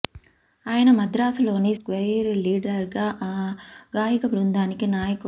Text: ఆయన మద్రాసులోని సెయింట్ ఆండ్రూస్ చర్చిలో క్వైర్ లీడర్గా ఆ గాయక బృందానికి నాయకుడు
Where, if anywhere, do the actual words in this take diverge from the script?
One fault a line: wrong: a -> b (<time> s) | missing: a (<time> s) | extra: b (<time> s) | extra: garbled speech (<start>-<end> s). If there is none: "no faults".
missing: సెయింట్ ఆండ్రూస్ చర్చిలో (1.7 s)